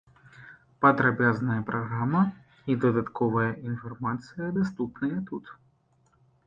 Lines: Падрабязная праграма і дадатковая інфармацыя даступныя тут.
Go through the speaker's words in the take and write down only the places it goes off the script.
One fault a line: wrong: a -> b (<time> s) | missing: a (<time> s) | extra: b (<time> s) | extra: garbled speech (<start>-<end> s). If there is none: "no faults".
no faults